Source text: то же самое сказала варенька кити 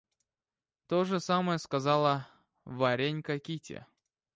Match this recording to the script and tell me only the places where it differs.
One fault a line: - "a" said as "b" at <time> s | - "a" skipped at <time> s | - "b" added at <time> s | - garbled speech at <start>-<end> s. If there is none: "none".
none